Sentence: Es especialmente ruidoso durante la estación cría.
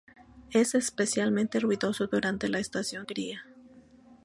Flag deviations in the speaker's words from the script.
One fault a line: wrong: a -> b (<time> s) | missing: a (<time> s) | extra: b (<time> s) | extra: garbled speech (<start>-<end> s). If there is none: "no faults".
no faults